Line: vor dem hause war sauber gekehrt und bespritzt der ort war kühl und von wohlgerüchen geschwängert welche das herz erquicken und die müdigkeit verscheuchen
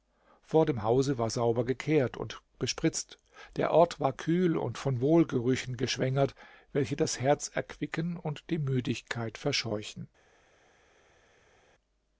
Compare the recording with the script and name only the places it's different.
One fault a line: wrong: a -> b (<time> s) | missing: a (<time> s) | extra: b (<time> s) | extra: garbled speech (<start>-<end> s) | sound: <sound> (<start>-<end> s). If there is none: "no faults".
no faults